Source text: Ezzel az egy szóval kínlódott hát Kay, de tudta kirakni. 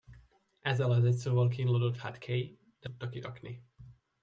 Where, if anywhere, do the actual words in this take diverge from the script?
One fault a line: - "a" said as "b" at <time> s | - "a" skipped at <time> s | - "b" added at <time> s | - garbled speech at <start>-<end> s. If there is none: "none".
none